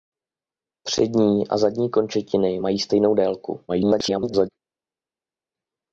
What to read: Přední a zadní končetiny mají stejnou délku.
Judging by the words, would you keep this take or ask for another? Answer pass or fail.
fail